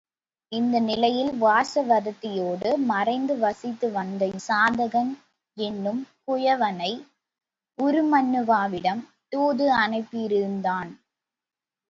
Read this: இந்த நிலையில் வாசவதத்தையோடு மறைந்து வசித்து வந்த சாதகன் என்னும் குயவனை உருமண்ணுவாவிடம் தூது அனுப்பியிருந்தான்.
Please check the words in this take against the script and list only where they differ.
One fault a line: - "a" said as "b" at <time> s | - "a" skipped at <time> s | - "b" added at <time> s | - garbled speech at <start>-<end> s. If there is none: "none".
none